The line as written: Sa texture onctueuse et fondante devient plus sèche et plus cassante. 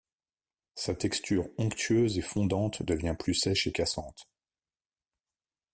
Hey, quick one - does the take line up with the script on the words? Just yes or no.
no